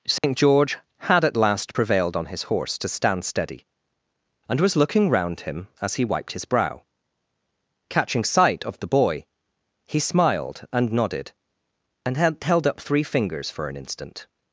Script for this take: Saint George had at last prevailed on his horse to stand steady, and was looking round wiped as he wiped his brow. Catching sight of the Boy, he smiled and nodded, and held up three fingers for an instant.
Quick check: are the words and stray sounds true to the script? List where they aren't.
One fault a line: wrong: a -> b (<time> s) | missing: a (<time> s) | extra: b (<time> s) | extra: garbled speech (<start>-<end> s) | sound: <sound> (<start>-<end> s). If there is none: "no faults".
sound: dropout (0.2-0.2 s)
wrong: wiped -> him (5.4 s)